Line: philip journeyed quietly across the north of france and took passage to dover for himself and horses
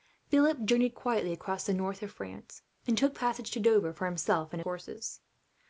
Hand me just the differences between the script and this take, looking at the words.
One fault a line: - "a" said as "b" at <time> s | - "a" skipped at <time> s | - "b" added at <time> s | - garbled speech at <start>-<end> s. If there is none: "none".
none